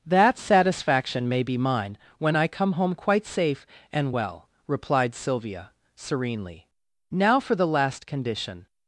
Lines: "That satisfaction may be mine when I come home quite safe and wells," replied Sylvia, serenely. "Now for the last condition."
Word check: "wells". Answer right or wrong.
wrong